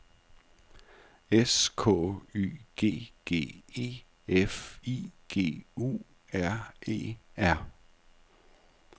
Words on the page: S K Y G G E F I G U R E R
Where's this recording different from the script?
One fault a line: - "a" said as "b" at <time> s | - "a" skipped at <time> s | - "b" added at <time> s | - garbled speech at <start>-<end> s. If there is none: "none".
none